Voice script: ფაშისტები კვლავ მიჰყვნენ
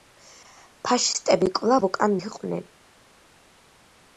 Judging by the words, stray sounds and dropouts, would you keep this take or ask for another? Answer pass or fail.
fail